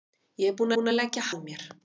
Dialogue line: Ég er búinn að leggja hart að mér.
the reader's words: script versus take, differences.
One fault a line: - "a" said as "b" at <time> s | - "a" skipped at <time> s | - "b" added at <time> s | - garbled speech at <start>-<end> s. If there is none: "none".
- "búinn" added at 0.8 s
- "hart" skipped at 1.3 s